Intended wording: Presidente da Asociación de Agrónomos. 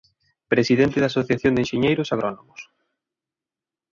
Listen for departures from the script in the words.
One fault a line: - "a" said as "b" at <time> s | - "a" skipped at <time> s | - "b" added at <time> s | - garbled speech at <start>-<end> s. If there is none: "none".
- "Enxeñeiros" added at 1.6 s